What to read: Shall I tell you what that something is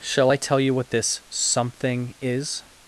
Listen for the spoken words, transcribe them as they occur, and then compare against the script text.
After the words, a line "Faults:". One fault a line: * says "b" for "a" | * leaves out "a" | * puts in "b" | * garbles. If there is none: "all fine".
Shall I tell you what this something is
Faults:
* says "this" for "that"